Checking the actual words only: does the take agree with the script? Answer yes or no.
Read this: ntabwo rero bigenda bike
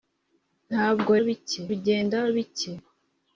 no